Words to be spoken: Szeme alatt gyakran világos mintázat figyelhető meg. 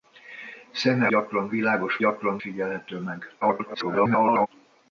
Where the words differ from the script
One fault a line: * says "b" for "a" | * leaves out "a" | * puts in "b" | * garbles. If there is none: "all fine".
* leaves out "alatt"
* says "gyakran" for "mintázat"
* garbles